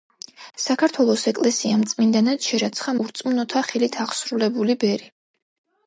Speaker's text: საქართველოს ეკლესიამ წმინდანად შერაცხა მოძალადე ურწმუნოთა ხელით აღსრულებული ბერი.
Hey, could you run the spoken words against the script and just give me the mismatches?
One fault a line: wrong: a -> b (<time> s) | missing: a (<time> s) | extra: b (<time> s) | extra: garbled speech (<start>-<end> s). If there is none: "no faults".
missing: მოძალადე (3.0 s)